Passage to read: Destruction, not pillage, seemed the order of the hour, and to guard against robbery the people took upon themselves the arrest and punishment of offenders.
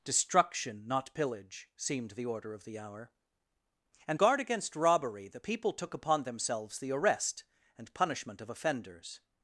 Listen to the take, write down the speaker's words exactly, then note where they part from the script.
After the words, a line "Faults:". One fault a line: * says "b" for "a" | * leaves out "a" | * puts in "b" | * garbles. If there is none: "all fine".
Destruction, not pillage, seemed the order of the hour, and guard against robbery the people took upon themselves the arrest and punishment of offenders.
Faults:
* leaves out "to"